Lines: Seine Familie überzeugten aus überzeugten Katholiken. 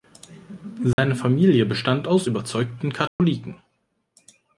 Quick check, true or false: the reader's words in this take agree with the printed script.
false